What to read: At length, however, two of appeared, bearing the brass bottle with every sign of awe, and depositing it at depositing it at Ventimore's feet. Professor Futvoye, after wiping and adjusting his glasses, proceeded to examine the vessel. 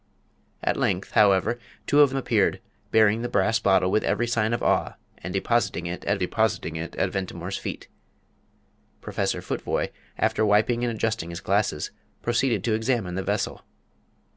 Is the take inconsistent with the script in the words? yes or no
no